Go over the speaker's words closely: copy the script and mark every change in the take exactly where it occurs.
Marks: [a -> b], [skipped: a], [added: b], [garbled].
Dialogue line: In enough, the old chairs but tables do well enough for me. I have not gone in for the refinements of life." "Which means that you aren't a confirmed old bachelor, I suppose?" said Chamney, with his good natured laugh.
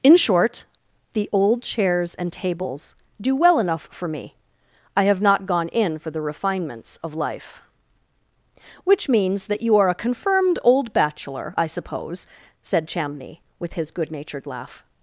In [enough, -> short] the old chairs [but -> and] tables do well enough for me. I have not gone in for the refinements of life." "Which means that you [aren't -> are] a confirmed old bachelor, I suppose?" said Chamney, with his good natured laugh.